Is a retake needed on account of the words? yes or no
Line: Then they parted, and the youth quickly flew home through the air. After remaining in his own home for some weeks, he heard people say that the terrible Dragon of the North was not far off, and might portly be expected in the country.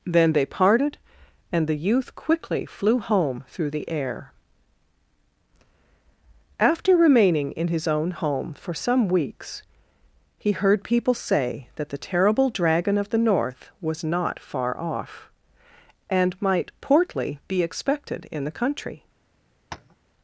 no